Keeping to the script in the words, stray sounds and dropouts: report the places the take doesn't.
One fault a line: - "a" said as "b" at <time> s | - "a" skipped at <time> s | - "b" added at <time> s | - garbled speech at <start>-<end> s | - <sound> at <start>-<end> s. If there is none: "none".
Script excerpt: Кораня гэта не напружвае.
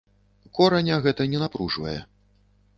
none